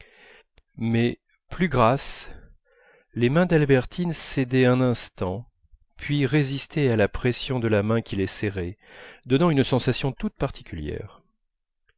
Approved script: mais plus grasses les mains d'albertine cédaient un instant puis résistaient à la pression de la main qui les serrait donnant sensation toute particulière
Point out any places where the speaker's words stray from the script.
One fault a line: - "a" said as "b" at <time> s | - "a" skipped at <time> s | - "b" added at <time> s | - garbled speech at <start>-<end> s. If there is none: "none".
- "une" added at 9.5 s